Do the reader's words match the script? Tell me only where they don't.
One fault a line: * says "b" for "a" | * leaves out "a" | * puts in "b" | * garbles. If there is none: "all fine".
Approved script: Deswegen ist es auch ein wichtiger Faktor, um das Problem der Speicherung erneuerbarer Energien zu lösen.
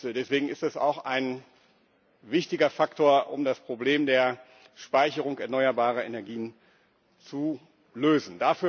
all fine